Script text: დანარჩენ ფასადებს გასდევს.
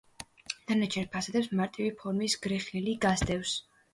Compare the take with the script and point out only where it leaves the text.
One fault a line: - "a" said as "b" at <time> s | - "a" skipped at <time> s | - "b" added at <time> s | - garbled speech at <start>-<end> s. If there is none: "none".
- "მარტივი ფორმის გრეხილი" added at 1.6 s